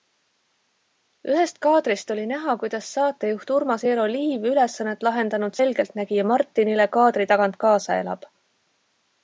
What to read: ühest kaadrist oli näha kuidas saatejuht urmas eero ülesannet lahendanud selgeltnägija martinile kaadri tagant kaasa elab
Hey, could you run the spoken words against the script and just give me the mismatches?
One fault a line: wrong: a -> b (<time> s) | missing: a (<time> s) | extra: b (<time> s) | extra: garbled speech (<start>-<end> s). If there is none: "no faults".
extra: liiv (4.1 s)